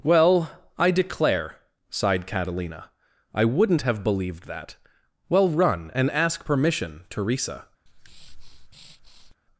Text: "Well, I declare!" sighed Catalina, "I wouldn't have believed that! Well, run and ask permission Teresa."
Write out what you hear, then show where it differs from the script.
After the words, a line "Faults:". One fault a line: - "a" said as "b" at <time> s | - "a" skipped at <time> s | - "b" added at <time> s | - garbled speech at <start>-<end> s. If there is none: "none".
"Well, I declare!" sighed Catalina, "I wouldn't have believed that! Well, run and ask permission Teresa."
Faults:
none